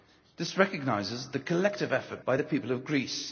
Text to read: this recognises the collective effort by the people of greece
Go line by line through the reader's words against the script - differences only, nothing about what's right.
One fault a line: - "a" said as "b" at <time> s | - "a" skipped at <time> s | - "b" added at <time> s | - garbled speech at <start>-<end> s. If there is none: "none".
none